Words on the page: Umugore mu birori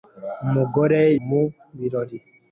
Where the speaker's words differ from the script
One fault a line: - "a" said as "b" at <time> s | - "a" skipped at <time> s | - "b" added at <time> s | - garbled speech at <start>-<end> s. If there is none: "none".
none